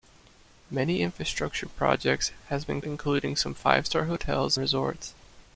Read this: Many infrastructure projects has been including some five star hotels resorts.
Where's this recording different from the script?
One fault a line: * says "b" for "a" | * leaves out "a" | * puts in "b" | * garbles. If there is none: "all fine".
all fine